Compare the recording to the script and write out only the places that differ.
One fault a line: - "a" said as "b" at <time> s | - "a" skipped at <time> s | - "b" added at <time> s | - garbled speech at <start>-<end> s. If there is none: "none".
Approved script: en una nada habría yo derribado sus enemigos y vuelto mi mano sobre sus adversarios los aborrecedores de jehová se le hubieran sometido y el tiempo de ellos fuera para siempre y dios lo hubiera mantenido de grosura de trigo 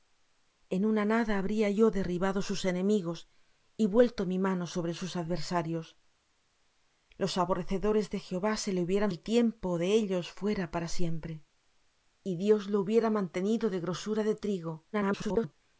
- "sometido y" skipped at 9.1 s
- garbled speech at 14.9-15.5 s